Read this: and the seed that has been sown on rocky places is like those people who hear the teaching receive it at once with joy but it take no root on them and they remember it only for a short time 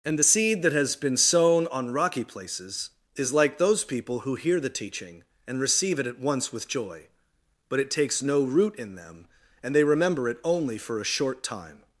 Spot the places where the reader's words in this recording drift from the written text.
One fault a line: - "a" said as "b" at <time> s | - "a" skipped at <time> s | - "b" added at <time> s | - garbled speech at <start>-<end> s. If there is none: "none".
- "and" added at 5.5 s
- "take" said as "takes" at 7.9 s
- "on" said as "in" at 8.8 s